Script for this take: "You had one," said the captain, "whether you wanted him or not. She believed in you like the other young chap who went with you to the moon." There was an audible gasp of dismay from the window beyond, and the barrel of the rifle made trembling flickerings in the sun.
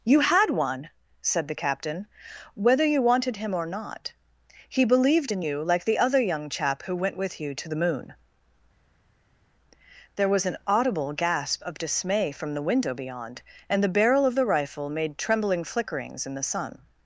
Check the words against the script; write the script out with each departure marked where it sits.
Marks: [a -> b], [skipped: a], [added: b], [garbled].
"You had one," said the captain, "whether you wanted him or not. [She -> He] believed in you like the other young chap who went with you to the moon." There was an audible gasp of dismay from the window beyond, and the barrel of the rifle made trembling flickerings in the sun.